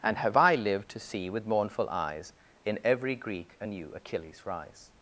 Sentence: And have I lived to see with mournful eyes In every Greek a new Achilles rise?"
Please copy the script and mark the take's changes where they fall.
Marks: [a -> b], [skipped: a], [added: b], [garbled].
And have I lived to see with mournful eyes In every Greek a new Achilles rise?"